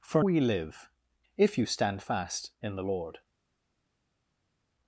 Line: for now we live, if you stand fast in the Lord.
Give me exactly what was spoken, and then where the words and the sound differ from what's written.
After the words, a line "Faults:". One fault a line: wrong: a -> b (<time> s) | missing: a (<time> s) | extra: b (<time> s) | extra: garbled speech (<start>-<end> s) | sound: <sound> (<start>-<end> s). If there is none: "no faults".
for we live, if you stand fast in the Lord.
Faults:
missing: now (0.2 s)